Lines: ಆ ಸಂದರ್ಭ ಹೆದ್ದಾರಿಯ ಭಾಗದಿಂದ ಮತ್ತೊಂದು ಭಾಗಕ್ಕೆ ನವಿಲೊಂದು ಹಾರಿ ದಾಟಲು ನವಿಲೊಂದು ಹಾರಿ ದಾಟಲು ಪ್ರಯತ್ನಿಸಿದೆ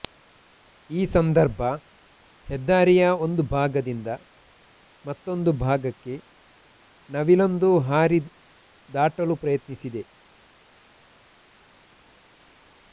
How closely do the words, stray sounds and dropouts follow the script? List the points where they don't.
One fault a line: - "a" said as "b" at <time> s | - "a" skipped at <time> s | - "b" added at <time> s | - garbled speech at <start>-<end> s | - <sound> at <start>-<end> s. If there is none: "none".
- "ಆ" said as "ಈ" at 0.9 s
- "ಒಂದು" added at 3.2 s
- "ನವಿಲೊಂದು ಹಾರಿ ದಾಟಲು" skipped at 9.4 s